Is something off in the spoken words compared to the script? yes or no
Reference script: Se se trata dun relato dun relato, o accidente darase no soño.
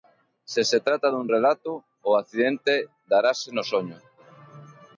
yes